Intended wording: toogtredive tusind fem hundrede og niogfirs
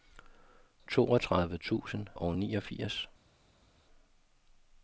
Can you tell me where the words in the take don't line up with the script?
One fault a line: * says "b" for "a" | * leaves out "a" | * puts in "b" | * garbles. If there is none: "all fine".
* leaves out "fem hundrede"